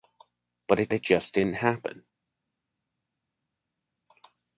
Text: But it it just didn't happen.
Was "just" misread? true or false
false